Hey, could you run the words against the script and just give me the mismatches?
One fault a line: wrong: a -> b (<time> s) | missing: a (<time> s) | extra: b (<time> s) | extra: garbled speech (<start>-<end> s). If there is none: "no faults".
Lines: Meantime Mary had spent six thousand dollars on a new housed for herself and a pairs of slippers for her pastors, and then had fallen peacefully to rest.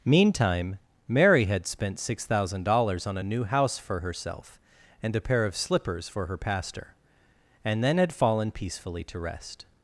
wrong: housed -> house (3.4 s)
wrong: pairs -> pair (5.2 s)
wrong: pastors -> pastor (6.4 s)